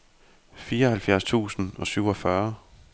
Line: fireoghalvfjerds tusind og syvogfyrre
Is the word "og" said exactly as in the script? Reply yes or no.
yes